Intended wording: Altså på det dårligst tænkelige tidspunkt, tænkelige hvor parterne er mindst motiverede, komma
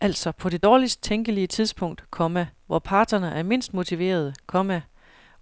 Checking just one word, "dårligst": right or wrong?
right